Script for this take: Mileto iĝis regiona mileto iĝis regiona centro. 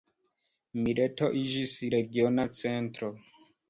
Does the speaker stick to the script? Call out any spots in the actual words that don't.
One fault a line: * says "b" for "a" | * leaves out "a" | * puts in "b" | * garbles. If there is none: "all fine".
* leaves out "mileto iĝis regiona"